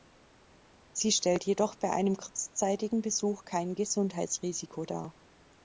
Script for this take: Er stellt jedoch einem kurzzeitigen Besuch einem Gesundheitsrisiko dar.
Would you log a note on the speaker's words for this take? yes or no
yes